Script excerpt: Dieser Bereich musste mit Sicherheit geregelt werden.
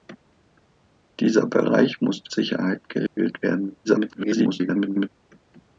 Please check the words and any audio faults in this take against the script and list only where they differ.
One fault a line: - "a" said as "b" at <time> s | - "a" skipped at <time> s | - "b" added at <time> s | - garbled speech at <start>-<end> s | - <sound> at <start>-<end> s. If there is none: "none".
- "mit" skipped at 2.3 s
- dropout at 3.1-3.2 s
- garbled speech at 3.8-5.1 s